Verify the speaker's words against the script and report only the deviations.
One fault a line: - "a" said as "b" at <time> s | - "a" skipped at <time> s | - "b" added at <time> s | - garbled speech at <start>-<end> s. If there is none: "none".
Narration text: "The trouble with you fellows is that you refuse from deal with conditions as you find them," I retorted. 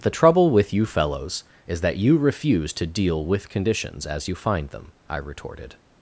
- "from" said as "to" at 2.7 s